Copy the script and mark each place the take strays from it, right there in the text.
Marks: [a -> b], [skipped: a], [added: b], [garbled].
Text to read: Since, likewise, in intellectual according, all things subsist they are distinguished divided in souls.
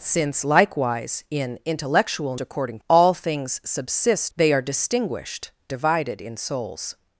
Since, likewise, in intellectual according, all things subsist they are distinguished divided in souls.